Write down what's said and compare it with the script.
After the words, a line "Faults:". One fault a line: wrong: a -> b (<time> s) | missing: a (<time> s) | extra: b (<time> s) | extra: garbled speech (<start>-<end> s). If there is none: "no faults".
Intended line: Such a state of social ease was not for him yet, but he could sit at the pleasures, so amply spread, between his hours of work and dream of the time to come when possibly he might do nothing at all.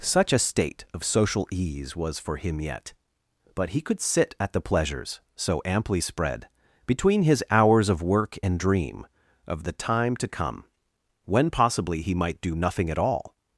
Such a state of social ease was for him yet, but he could sit at the pleasures, so amply spread, between his hours of work and dream of the time to come when possibly he might do nothing at all.
Faults:
missing: not (2.2 s)